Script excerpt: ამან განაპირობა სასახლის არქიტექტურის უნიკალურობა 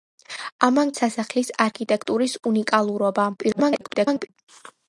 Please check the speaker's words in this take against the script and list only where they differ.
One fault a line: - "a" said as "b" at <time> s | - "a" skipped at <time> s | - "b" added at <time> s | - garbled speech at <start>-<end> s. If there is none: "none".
- "განაპირობა" skipped at 0.9 s
- garbled speech at 3.4-4.3 s